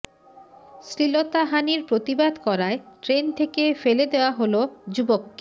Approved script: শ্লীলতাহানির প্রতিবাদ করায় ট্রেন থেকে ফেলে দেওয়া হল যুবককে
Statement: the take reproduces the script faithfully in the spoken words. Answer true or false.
true